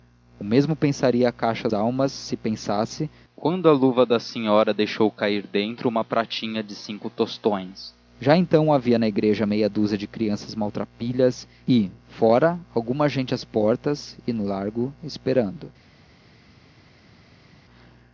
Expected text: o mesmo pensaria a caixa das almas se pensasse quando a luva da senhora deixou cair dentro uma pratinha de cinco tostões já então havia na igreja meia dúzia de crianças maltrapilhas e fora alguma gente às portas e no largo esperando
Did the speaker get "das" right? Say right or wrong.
wrong